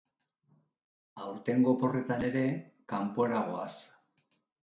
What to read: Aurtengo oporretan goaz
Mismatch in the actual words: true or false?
true